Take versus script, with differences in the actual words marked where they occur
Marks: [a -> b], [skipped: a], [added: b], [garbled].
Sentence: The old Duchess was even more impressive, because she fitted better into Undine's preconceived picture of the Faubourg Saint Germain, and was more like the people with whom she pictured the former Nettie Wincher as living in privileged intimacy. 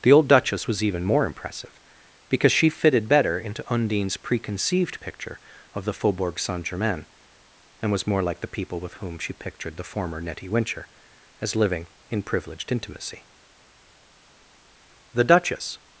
The old Duchess was even more impressive, because she fitted better into Undine's preconceived picture of the Faubourg Saint Germain, and was more like the people with whom she pictured the former Nettie Wincher as living in privileged intimacy. [added: The Duchess]